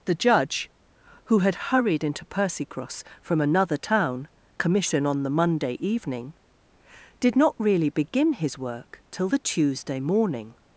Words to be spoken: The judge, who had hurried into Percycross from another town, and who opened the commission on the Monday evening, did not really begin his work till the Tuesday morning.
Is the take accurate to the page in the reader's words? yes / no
no